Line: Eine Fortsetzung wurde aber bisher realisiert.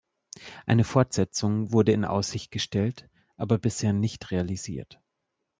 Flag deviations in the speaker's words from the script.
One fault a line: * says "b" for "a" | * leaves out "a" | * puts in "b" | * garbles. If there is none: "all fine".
* puts in "in Aussicht gestellt"
* puts in "nicht"